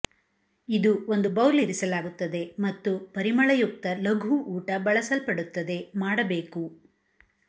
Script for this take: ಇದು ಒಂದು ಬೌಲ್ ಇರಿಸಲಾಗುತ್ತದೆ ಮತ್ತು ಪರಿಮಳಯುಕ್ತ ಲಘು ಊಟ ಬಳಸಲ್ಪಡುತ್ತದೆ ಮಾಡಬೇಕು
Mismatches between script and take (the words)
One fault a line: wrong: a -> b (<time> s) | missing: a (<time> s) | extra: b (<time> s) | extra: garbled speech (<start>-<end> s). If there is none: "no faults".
no faults